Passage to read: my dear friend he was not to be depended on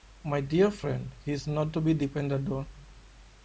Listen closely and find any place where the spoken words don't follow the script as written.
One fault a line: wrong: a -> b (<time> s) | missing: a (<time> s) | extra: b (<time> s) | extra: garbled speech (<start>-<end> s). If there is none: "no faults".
wrong: was -> is (1.3 s)